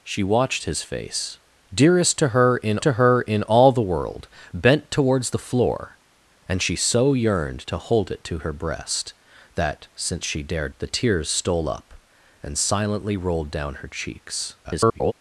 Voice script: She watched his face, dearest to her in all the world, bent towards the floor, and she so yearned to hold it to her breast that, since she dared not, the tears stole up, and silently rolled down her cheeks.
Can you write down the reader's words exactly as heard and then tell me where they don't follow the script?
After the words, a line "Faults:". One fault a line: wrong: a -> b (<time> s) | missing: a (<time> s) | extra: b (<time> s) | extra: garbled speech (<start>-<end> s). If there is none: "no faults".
She watched his face, dearest to her in to her in all the world, bent towards the floor, and she so yearned to hold it to her breast that, since she dared the tears stole up, and silently rolled down her cheeks. [garbled]
Faults:
extra: to her in (2.8 s)
missing: not (10.7 s)
extra: garbled speech (14.6-15.1 s)